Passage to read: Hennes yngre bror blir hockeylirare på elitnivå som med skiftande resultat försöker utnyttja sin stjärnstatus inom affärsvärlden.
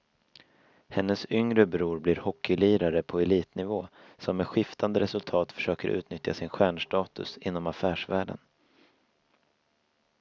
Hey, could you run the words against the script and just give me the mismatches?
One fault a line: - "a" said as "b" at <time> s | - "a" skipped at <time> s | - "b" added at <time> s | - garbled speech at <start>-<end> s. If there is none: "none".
none